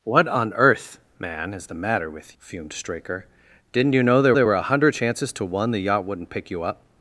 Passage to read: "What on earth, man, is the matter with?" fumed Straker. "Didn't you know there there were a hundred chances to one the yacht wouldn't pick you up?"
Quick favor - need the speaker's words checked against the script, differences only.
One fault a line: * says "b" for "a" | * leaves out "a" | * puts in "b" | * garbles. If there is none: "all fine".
all fine